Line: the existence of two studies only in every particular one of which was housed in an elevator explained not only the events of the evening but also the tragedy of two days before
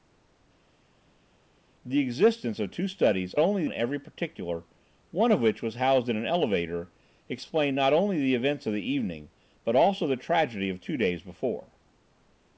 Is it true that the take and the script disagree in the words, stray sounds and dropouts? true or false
false